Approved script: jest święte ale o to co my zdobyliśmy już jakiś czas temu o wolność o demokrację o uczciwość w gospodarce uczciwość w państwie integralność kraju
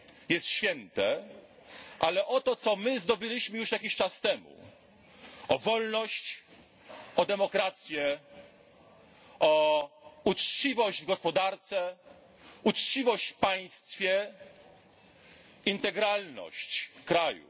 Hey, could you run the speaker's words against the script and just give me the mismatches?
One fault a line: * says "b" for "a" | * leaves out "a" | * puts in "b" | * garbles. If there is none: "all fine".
all fine